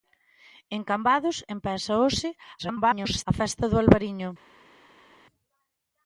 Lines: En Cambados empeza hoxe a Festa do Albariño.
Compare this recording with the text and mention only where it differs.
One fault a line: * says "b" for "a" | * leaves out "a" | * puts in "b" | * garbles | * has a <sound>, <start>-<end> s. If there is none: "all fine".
* garbles